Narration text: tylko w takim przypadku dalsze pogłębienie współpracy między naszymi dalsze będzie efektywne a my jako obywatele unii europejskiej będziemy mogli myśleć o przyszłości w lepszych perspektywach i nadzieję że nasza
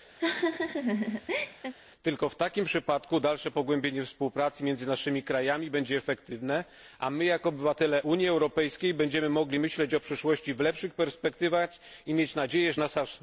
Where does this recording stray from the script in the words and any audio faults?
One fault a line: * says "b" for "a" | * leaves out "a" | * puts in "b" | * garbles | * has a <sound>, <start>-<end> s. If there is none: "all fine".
* has a laugh, 0.2-1.7 s
* says "krajami" for "dalsze"
* puts in "mieć"